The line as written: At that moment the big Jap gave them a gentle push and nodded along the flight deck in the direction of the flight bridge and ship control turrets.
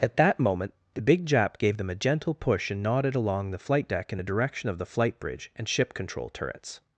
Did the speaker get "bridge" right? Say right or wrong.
right